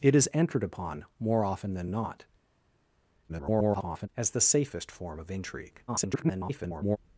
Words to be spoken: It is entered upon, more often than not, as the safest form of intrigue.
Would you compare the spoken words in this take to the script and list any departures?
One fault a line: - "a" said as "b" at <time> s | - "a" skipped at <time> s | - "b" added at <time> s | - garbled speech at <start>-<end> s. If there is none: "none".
- garbled speech at 3.3-4.1 s
- garbled speech at 5.9-7.0 s